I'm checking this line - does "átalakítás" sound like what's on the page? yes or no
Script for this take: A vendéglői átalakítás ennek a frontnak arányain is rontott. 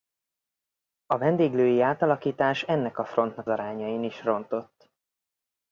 yes